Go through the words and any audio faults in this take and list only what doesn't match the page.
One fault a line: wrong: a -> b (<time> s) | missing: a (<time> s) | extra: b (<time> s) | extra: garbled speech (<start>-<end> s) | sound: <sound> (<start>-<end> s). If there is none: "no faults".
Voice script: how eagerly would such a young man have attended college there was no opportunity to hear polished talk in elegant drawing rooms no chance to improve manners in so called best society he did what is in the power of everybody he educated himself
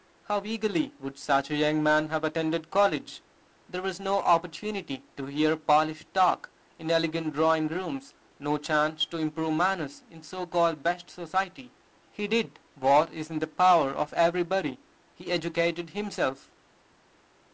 no faults